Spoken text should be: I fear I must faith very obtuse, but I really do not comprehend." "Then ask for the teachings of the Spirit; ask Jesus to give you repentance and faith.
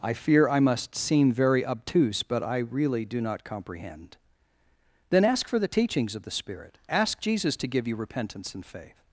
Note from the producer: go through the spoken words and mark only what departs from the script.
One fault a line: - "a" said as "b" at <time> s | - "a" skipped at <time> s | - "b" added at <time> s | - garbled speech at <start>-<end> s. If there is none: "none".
- "faith" said as "seem" at 0.9 s